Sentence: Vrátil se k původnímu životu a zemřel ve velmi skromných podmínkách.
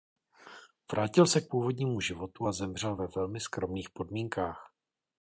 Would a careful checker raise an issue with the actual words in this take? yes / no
no